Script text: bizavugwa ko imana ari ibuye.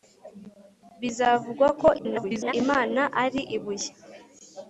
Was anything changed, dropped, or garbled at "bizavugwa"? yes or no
no